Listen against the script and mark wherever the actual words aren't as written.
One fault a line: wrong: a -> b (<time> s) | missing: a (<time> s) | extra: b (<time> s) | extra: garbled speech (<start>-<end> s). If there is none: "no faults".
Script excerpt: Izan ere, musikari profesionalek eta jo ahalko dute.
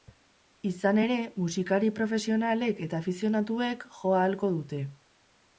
extra: afizionatuek (3.0 s)